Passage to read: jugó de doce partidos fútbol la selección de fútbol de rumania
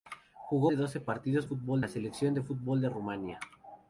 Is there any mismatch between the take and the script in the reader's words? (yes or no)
no